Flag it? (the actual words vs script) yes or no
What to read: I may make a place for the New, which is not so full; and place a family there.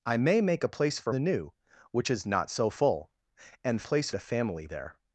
no